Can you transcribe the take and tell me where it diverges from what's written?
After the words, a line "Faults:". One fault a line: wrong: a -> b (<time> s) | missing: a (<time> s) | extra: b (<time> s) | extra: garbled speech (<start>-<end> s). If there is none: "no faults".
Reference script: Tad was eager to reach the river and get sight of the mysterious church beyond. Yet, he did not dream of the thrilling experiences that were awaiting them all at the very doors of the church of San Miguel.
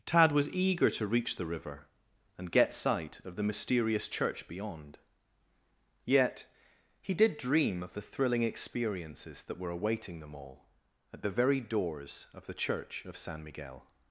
Tad was eager to reach the river and get sight of the mysterious church beyond. Yet, he did dream of the thrilling experiences that were awaiting them all at the very doors of the church of San Miguel.
Faults:
missing: not (7.4 s)